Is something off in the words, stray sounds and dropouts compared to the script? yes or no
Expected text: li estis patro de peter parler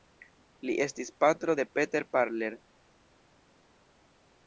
no